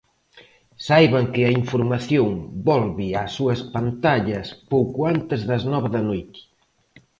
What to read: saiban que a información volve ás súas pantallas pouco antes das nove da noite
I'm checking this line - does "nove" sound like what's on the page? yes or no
yes